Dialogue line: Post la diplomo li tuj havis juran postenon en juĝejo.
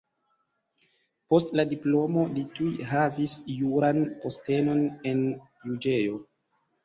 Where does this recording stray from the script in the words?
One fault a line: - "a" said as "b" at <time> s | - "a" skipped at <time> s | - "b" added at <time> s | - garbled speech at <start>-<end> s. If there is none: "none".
none